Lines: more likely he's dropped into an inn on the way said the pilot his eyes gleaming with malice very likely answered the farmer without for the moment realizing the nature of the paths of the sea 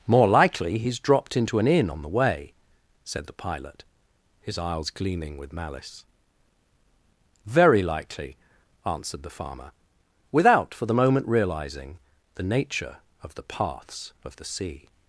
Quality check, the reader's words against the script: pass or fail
pass